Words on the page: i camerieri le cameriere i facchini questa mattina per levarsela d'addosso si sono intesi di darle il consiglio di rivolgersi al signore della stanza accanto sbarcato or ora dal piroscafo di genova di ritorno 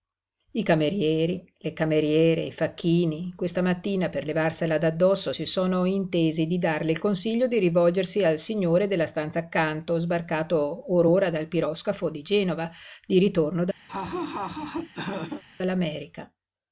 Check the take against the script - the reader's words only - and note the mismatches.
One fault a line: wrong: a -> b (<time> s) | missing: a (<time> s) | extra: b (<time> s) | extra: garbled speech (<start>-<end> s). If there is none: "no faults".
no faults